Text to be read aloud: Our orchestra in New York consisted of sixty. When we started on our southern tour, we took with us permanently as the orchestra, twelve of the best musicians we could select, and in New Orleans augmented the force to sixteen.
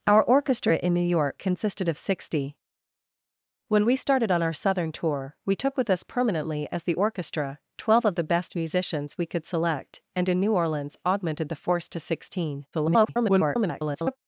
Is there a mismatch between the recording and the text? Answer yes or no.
yes